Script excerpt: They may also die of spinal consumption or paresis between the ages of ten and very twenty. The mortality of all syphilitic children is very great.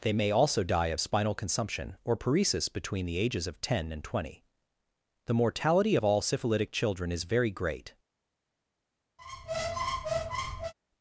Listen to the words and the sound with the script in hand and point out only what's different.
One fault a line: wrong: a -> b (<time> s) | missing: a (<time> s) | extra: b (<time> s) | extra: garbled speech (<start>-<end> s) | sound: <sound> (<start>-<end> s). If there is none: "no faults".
missing: very (4.0 s)
sound: squeak (9.2-10.7 s)